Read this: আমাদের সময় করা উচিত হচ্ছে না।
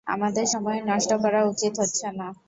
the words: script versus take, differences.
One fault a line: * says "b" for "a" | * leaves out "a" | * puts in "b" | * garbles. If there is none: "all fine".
* puts in "নষ্ট"